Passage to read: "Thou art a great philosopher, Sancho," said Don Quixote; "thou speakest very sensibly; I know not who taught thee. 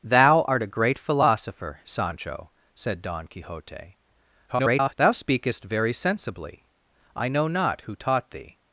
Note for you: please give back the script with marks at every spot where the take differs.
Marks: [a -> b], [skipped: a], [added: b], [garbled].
"Thou art a great philosopher, Sancho," said Don Quixote; [garbled] "thou speakest very sensibly; I know not who taught thee.